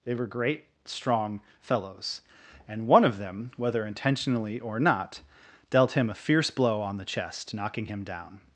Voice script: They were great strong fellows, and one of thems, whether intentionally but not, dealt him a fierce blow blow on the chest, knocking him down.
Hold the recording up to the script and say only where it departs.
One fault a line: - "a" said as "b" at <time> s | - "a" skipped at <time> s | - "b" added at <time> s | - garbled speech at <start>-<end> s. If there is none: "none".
- "thems" said as "them" at 3.2 s
- "but" said as "or" at 4.6 s
- "blow" skipped at 6.8 s